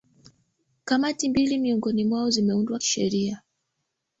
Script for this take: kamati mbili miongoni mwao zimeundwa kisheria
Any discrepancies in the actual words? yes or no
no